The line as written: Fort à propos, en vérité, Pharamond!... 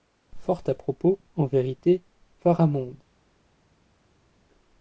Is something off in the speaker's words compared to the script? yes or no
no